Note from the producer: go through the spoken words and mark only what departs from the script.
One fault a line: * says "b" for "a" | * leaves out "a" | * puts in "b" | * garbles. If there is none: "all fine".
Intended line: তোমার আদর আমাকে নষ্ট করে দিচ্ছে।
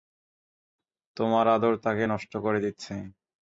* says "তাকে" for "আমাকে"